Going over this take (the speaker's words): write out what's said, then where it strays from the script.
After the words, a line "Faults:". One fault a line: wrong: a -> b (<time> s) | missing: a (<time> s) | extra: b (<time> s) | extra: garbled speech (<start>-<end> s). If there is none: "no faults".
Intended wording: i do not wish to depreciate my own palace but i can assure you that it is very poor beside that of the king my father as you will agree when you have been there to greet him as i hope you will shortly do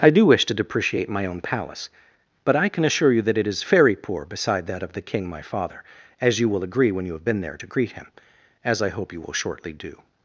i do wish to depreciate my own palace but i can assure you that it is very poor beside that of the king my father as you will agree when you have been there to greet him as i hope you will shortly do
Faults:
missing: not (0.2 s)